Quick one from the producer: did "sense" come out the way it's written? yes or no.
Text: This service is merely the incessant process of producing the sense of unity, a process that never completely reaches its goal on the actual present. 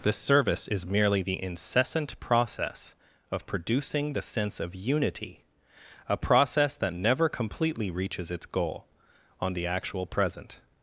yes